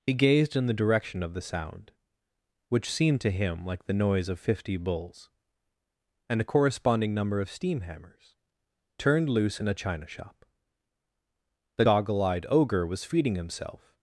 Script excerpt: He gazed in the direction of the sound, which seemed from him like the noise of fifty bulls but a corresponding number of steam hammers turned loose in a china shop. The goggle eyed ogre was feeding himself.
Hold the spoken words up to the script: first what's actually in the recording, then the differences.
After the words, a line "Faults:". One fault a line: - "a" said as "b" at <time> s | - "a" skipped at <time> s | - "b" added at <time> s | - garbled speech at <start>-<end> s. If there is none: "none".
He gazed in the direction of the sound, which seemed to him like the noise of fifty bulls and a corresponding number of steam hammers turned loose in a china shop. The goggle eyed ogre was feeding himself.
Faults:
- "from" said as "to" at 3.2 s
- "but" said as "and" at 6.3 s